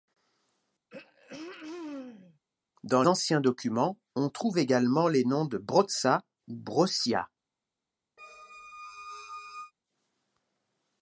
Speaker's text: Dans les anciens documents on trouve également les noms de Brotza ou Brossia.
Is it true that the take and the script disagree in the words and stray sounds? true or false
true